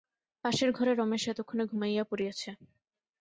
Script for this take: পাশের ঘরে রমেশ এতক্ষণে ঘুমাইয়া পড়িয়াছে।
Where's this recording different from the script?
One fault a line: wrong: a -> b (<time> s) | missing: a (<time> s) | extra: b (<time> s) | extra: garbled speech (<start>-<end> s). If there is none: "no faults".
no faults